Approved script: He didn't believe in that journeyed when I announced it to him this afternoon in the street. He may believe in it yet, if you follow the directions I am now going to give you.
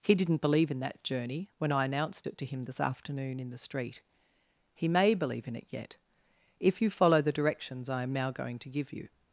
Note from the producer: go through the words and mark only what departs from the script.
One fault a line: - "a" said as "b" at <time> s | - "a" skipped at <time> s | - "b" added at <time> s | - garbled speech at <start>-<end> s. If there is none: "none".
- "journeyed" said as "journey" at 1.0 s